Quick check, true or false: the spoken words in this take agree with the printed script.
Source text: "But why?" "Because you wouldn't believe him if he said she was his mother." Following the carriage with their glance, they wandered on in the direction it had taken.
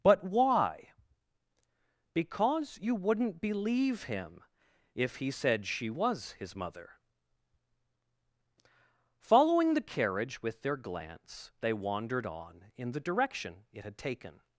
true